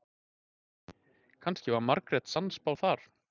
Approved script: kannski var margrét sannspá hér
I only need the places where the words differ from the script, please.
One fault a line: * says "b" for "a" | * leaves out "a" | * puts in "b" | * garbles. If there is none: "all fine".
* says "þar" for "hér"